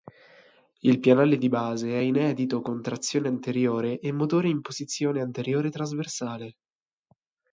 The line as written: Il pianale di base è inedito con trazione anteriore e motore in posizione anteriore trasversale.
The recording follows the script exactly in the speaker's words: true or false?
true